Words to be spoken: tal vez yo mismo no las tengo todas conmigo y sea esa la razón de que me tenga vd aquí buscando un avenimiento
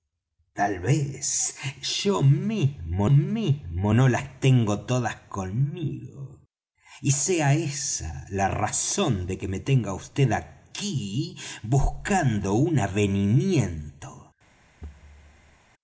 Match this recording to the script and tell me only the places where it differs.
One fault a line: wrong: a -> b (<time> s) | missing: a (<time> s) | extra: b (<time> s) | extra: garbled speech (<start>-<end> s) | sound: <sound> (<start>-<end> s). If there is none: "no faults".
extra: mismo (3.1 s)
sound: thud (14.8-15.6 s)